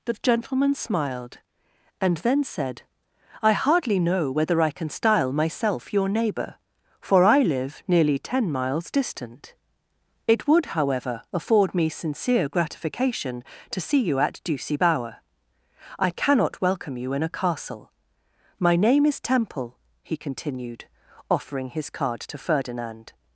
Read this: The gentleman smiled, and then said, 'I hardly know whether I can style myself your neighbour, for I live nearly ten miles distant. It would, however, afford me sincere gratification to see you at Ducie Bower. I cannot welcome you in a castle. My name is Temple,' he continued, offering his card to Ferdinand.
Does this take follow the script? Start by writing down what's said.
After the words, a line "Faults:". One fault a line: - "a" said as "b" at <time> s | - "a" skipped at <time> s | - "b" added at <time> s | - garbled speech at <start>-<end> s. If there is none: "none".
The gentleman smiled, and then said, 'I hardly know whether I can style myself your neighbour, for I live nearly ten miles distant. It would, however, afford me sincere gratification to see you at Ducie Bower. I cannot welcome you in a castle. My name is Temple,' he continued, offering his card to Ferdinand.
Faults:
none